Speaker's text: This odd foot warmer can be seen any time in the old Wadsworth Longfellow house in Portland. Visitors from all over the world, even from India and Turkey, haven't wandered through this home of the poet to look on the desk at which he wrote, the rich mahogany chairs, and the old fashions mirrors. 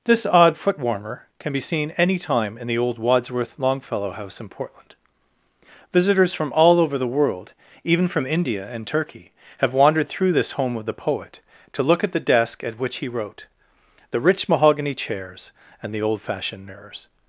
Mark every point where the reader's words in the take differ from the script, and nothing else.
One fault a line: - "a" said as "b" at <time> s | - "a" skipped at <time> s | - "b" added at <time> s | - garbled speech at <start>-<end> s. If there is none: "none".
- "haven't" said as "have" at 9.6 s
- "on" said as "at" at 12.0 s
- "fashions" said as "fashioned" at 16.2 s